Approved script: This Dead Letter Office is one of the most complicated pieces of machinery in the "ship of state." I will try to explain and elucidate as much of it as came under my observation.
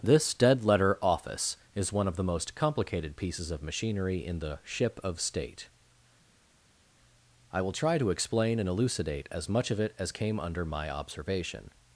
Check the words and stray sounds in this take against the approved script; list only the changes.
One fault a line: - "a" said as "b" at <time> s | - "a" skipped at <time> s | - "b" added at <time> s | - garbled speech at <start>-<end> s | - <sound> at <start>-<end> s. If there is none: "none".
none